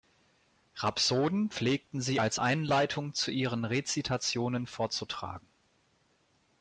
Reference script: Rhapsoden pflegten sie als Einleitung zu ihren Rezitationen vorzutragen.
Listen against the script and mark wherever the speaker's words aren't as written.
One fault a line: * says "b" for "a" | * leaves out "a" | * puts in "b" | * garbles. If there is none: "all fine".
all fine